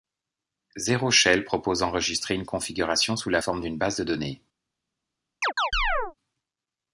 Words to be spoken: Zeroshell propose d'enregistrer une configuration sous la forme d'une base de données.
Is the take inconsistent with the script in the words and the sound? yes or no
yes